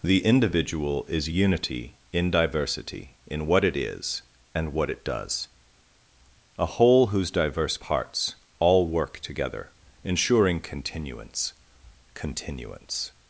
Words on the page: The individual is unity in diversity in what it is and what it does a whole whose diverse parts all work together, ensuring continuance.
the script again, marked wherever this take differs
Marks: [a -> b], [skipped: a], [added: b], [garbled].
The individual is unity in diversity in what it is and what it does a whole whose diverse parts all work together, ensuring continuance. [added: continuance]